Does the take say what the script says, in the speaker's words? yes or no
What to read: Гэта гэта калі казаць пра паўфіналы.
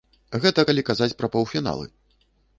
no